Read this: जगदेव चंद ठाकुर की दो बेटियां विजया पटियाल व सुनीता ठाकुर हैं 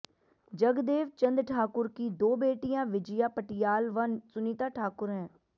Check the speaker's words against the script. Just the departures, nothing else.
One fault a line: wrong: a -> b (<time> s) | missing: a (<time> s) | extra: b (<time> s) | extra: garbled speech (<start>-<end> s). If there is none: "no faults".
no faults